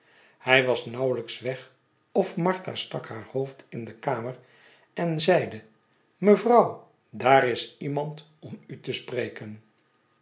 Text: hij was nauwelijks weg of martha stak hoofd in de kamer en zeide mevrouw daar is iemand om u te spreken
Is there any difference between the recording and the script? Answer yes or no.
yes